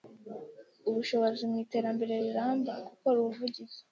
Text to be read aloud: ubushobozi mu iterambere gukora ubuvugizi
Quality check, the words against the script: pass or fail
fail